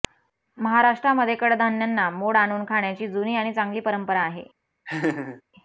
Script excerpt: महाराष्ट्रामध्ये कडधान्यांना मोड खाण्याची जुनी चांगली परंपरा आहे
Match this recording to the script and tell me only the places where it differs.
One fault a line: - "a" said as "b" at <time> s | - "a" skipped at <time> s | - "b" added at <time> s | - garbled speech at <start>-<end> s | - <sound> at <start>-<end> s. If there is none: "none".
- "आणून" added at 2.4 s
- "आणि" added at 3.4 s
- laugh at 4.9-5.4 s